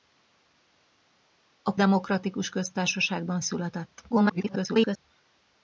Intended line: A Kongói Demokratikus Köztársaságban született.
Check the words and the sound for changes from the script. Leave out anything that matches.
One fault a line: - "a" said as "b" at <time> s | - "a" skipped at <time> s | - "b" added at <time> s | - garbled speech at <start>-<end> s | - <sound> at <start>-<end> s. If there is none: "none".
- "Kongói" skipped at 1.7 s
- garbled speech at 4.1-5.0 s